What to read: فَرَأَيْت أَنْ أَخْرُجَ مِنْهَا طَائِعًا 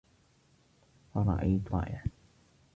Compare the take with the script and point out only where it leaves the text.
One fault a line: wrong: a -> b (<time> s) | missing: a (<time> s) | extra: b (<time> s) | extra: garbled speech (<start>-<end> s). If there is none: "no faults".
missing: أَنْ أَخْرُجَ مِنْهَا (1.7 s)